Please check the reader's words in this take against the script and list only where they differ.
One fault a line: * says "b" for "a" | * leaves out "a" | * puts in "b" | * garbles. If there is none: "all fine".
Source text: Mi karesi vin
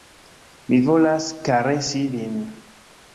* puts in "volas"